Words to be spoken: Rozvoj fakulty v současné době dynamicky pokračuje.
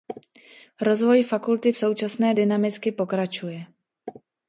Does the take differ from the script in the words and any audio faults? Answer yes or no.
yes